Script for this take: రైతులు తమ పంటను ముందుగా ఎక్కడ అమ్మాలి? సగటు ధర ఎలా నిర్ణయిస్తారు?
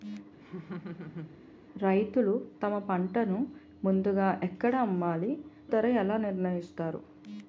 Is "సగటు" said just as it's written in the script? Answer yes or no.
no